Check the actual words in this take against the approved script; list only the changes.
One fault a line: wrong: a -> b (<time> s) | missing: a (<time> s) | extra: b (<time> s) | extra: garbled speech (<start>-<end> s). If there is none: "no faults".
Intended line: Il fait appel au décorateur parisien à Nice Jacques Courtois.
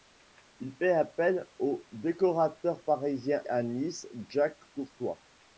no faults